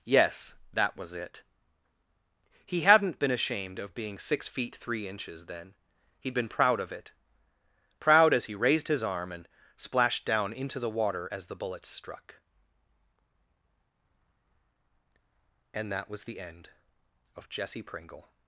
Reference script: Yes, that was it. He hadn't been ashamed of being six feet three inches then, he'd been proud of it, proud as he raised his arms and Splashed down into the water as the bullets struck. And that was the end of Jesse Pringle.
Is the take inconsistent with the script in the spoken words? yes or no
yes